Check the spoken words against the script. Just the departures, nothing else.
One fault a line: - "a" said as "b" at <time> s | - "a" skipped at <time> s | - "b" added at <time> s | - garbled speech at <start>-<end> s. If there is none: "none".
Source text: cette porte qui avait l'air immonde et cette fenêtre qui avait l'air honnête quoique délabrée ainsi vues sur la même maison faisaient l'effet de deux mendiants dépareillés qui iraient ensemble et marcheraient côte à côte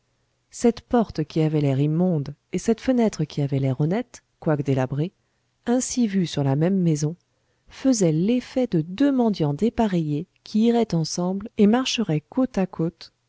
none